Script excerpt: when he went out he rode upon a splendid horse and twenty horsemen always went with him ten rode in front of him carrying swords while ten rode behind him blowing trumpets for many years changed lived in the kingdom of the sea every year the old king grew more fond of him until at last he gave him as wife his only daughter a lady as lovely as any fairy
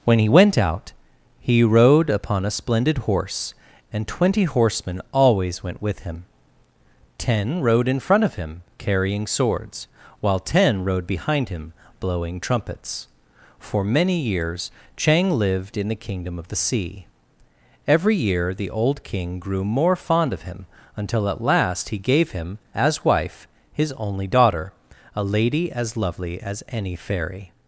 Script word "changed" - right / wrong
wrong